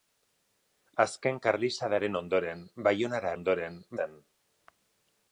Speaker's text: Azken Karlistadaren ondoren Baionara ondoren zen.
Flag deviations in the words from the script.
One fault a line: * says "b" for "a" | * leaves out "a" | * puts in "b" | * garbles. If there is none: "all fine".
all fine